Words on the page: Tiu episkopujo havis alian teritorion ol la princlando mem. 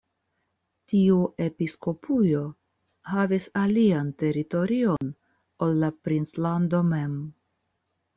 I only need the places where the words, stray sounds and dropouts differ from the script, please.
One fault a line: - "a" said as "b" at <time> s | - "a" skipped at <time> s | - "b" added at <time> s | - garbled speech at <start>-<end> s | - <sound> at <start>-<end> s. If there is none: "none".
- dropout at 5.0-5.0 s